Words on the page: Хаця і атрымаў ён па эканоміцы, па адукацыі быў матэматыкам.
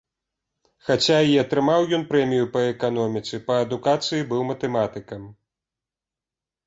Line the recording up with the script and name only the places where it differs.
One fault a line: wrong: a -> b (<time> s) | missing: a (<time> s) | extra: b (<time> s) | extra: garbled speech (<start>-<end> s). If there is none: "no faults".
extra: прэмію (2.1 s)